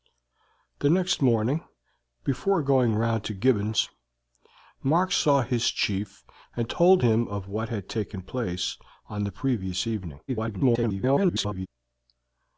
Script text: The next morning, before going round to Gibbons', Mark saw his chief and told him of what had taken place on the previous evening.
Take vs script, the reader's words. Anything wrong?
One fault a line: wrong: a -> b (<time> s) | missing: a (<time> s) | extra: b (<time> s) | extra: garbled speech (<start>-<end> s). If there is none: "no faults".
extra: garbled speech (10.3-11.7 s)